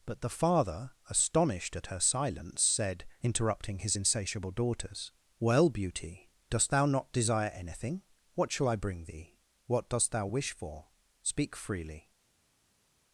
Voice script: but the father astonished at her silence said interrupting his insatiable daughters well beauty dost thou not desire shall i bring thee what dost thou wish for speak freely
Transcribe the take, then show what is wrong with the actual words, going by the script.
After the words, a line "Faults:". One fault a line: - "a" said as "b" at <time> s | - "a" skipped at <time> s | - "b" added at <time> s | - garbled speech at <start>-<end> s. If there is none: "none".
but the father astonished at her silence said interrupting his insatiable daughters well beauty dost thou not desire anything what shall i bring thee what dost thou wish for speak freely
Faults:
- "anything what" added at 7.5 s